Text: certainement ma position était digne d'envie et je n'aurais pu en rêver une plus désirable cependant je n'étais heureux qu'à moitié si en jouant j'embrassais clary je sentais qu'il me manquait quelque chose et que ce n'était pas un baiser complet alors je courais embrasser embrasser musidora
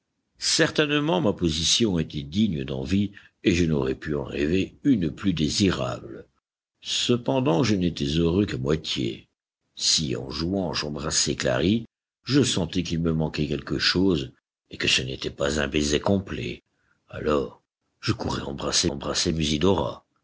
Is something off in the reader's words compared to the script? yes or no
no